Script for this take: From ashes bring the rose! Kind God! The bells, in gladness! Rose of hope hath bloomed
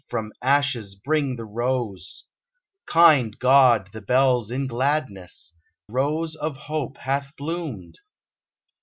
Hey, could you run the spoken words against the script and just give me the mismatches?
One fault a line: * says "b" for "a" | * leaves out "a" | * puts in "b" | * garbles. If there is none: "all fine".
all fine